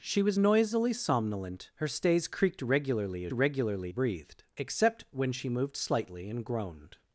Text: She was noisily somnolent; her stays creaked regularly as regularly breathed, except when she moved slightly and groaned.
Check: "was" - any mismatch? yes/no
no